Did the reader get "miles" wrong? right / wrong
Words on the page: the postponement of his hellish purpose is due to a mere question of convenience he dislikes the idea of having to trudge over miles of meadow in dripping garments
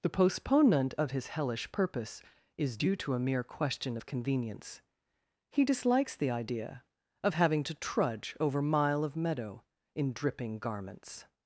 wrong